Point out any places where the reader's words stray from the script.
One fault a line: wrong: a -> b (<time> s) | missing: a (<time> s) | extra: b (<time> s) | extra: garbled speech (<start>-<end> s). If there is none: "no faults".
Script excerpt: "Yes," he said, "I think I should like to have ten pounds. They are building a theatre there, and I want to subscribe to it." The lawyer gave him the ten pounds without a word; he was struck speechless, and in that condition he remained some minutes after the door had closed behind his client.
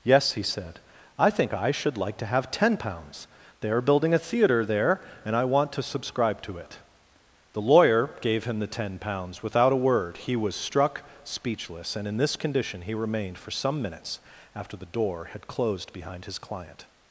wrong: that -> this (12.2 s)
extra: for (13.4 s)